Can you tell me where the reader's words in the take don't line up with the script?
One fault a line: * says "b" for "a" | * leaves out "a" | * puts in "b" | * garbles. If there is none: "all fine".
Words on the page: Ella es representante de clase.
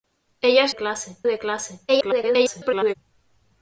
* says "clase" for "representante"
* garbles